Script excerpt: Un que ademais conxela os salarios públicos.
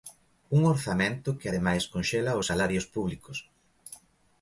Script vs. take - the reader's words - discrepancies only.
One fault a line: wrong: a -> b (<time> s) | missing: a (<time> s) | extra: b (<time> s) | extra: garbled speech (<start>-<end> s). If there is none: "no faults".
extra: orzamento (0.7 s)